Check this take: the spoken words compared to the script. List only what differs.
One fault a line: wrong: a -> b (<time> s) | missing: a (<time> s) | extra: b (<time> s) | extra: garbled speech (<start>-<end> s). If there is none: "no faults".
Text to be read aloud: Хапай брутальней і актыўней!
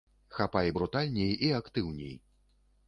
no faults